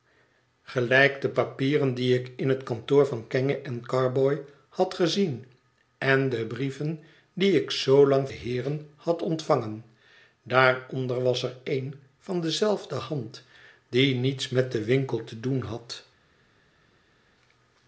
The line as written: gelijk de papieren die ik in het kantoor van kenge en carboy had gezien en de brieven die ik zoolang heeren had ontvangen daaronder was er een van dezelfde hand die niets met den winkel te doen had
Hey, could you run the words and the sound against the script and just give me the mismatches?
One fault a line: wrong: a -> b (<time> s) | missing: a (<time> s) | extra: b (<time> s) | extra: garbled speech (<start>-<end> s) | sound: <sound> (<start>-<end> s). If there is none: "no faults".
no faults